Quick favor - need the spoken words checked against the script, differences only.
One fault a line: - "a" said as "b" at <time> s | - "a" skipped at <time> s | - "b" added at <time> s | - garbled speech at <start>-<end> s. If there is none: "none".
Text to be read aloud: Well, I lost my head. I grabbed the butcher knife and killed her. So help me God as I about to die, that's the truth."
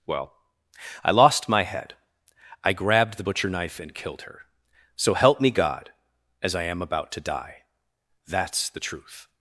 - "am" added at 6.6 s